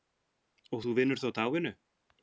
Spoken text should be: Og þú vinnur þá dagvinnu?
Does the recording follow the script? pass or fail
pass